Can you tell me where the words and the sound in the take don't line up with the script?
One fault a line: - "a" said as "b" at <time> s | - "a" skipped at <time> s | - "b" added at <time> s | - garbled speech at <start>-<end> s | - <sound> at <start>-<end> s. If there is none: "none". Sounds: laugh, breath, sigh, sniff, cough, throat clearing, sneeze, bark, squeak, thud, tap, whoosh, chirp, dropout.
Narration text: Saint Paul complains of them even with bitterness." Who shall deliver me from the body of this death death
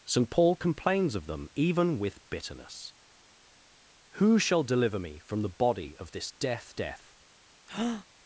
- breath at 7.7-8.1 s